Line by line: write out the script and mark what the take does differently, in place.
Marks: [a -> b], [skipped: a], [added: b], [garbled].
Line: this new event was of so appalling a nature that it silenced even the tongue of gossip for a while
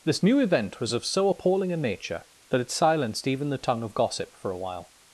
this new event was of so appalling a nature that it silenced even the tongue of gossip for a while